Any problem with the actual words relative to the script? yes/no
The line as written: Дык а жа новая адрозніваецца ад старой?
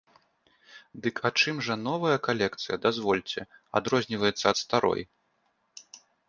yes